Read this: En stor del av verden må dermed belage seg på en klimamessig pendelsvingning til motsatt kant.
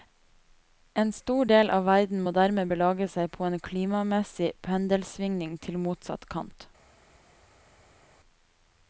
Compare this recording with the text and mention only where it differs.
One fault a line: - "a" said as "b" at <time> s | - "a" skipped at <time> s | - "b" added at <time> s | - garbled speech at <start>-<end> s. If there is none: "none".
none